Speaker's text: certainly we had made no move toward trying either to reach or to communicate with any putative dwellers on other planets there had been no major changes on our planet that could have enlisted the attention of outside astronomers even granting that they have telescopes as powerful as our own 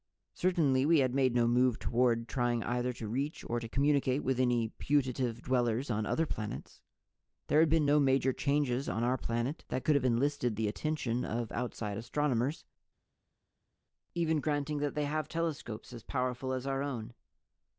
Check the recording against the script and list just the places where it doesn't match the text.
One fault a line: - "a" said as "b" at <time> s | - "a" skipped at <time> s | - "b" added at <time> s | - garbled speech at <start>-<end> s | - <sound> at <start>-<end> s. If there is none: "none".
none